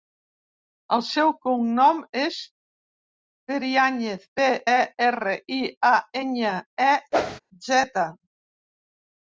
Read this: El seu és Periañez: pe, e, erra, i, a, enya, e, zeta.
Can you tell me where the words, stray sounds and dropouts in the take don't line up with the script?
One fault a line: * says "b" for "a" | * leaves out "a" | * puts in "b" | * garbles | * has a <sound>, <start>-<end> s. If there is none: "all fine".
* puts in "cognom"
* has a whoosh, 7.1-7.4 s